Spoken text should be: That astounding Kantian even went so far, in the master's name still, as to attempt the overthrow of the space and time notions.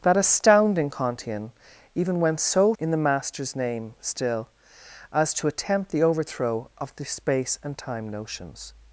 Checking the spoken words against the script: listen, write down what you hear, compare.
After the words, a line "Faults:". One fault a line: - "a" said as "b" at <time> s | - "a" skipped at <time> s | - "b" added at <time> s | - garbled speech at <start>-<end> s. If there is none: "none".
That astounding Kantian even went so in the master's name still, as to attempt the overthrow of the space and time notions.
Faults:
- "far" skipped at 2.7 s